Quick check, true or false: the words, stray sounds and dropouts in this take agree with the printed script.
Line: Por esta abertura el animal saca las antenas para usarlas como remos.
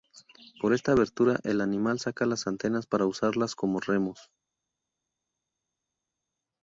true